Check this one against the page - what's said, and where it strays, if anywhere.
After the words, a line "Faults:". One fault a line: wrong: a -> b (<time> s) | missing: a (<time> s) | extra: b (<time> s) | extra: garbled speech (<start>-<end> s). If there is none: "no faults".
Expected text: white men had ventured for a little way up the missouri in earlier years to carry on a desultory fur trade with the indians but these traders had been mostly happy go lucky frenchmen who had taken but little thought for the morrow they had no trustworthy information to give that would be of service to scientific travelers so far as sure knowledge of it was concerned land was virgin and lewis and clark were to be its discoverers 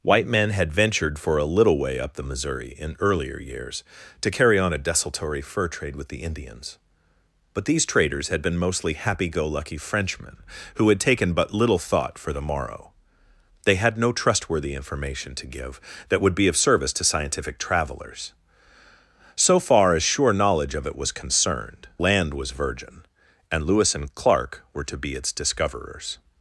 white men had ventured for a little way up the missouri in earlier years to carry on a desultory fur trade with the indians but these traders had been mostly happy go lucky frenchmen who had taken but little thought for the morrow they had no trustworthy information to give that would be of service to scientific travelers so far as sure knowledge of it was concerned land was virgin and lewis and clark were to be its discoverers
Faults:
no faults